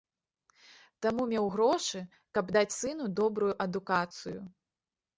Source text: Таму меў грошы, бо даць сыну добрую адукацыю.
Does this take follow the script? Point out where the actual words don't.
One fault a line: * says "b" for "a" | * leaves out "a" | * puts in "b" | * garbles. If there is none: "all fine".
* says "каб" for "бо"